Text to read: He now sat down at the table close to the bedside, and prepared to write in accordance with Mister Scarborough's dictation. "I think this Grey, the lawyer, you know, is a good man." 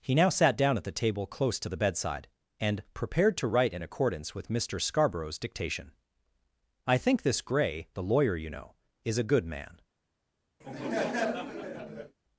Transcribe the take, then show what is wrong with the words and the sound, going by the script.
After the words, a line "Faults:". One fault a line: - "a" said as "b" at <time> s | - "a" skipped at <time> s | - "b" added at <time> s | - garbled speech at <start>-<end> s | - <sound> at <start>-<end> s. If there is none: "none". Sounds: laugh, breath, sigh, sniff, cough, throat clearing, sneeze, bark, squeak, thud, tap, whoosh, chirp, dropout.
He now sat down at the table close to the bedside, and prepared to write in accordance with Mister Scarborough's dictation. "I think this Grey, the lawyer, you know, is a good man."
Faults:
- laugh at 10.6-12.2 s